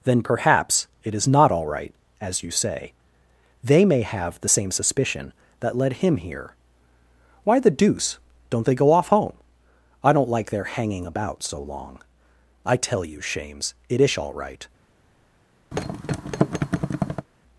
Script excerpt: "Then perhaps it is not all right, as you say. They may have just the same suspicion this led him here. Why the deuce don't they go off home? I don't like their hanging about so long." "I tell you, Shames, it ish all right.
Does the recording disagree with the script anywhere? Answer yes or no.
yes